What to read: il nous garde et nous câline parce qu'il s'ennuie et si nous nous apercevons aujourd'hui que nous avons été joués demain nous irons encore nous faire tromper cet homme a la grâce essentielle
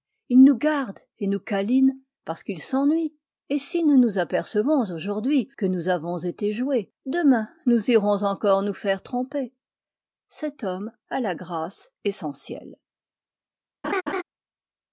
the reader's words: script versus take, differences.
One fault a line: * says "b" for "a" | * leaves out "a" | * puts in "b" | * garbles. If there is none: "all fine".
all fine